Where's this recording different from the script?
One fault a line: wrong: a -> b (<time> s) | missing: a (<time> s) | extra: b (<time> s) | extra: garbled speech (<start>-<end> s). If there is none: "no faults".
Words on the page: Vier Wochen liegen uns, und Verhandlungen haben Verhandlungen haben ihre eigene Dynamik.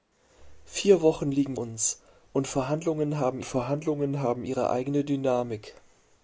no faults